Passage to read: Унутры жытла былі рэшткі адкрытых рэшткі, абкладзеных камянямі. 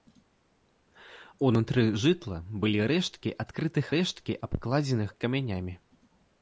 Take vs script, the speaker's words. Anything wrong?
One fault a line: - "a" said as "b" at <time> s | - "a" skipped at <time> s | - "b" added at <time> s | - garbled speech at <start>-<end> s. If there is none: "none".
none